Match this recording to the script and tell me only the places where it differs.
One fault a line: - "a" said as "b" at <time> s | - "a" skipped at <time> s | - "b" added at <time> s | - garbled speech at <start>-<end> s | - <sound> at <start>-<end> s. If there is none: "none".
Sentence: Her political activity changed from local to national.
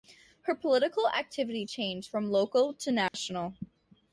- dropout at 3.1-3.1 s